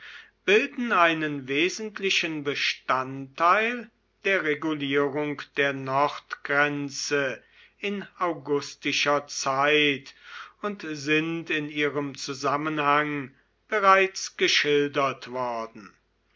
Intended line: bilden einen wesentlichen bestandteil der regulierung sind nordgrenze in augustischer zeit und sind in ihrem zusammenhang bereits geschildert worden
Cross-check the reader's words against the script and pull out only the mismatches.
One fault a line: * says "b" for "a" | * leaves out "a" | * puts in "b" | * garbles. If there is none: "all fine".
* says "der" for "sind"